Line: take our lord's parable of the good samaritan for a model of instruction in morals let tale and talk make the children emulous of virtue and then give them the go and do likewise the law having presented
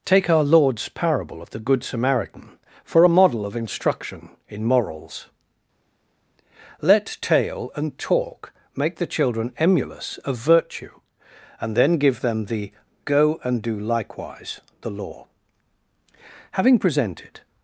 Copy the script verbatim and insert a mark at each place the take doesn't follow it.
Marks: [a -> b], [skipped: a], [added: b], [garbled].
take our lord's parable of the good samaritan for a model of instruction in morals let tale and talk make the children emulous of virtue and then give them the go and do likewise the law having presented